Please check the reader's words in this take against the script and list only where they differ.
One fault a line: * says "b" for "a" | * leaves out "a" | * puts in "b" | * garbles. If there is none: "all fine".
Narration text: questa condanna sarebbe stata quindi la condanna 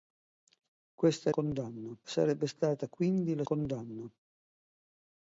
all fine